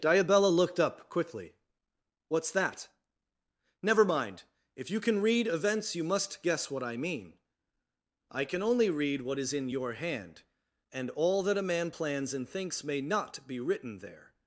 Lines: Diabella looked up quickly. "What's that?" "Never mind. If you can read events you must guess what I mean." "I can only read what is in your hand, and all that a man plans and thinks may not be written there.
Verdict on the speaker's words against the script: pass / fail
pass